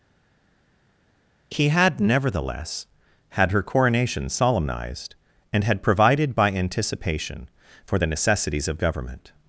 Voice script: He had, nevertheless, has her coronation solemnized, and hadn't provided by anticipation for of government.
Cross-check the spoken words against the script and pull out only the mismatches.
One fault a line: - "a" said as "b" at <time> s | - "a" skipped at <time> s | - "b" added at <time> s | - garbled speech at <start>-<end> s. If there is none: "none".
- "has" said as "had" at 3.3 s
- "hadn't" said as "had" at 5.6 s
- "the necessities" added at 8.0 s